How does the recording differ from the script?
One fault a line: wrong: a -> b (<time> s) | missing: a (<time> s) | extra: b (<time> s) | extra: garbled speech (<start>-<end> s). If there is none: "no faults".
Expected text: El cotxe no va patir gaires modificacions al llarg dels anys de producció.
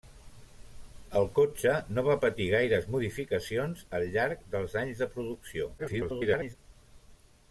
extra: garbled speech (5.8-6.6 s)